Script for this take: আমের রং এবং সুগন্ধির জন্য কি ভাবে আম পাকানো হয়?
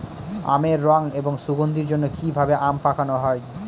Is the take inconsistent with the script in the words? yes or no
no